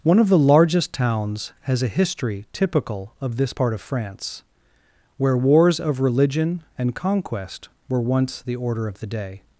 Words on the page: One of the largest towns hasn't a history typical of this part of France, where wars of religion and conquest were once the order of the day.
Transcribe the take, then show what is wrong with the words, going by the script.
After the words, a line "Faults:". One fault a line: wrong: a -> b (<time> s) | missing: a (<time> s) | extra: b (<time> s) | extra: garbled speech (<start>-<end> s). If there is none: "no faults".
One of the largest towns has a history typical of this part of France, where wars of religion and conquest were once the order of the day.
Faults:
wrong: hasn't -> has (1.6 s)